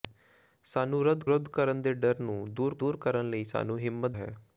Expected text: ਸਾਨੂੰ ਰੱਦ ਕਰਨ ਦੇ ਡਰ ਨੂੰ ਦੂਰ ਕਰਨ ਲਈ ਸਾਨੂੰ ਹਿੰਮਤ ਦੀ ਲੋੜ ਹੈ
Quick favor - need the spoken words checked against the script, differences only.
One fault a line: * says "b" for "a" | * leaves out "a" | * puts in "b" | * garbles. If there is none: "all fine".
* puts in "ਰੱਦ"
* puts in "ਦੂਰ"
* leaves out "ਦੀ ਲੋੜ"